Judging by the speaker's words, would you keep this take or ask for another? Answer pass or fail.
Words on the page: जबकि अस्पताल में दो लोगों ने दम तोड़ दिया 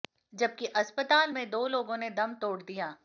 pass